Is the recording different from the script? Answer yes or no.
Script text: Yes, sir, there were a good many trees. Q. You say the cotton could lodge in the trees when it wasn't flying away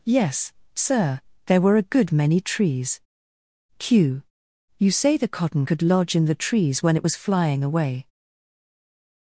yes